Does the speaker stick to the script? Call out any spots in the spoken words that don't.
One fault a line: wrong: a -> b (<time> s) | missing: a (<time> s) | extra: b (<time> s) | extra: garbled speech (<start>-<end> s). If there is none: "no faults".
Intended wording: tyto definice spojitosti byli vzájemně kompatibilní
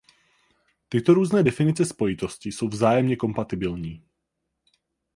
extra: různé (1.1 s)
wrong: byli -> jsou (2.5 s)